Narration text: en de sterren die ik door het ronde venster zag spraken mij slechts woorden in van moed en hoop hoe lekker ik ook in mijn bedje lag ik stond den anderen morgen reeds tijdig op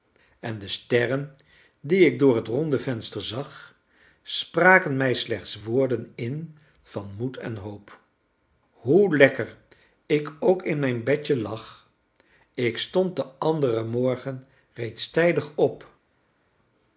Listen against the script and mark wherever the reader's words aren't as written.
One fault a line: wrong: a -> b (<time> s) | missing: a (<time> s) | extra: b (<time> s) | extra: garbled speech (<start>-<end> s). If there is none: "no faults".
no faults